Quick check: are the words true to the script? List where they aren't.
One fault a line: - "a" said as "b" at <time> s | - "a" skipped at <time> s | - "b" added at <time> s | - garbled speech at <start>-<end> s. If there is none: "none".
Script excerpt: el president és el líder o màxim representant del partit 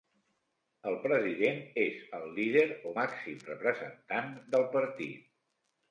none